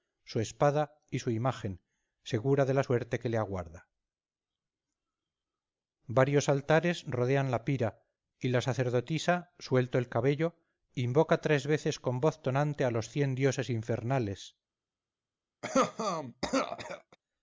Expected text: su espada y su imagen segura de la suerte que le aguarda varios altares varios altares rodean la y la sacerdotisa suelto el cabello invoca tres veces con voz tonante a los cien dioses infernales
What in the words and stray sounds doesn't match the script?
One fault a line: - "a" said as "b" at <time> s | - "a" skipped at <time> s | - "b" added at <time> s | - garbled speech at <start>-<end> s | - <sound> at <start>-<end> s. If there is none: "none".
- "varios altares" skipped at 7.0 s
- "pira" added at 7.6 s
- cough at 15.6-17.2 s